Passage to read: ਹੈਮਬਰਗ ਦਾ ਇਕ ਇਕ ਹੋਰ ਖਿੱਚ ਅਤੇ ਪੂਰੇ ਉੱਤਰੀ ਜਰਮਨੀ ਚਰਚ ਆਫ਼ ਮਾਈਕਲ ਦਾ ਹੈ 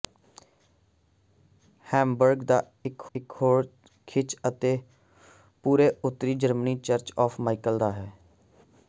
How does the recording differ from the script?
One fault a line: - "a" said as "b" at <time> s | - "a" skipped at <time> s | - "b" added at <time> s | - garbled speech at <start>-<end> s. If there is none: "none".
none